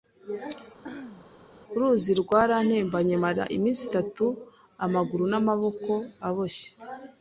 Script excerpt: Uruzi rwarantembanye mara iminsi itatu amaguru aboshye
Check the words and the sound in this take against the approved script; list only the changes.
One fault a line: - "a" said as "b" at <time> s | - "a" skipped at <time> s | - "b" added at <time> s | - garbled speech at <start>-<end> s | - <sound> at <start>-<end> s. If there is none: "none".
- throat clearing at 0.8-1.3 s
- "n'amaboko" added at 5.3 s